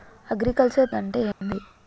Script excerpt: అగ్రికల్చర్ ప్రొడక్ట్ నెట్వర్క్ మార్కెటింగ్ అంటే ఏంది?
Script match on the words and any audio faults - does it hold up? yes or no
no